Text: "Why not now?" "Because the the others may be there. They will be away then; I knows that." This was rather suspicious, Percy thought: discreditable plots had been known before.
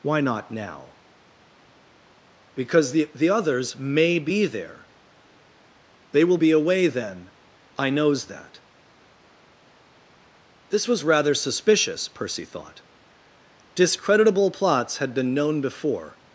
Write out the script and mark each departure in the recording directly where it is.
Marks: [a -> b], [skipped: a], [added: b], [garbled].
"Why not now?" "Because the the others may be there. They will be away then; I knows that." This was rather suspicious, Percy thought: discreditable plots had been known before.